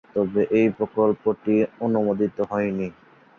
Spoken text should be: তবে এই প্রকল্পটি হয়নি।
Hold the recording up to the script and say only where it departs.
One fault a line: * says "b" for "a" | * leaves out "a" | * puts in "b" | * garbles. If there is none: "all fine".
* puts in "অনুমোদিত"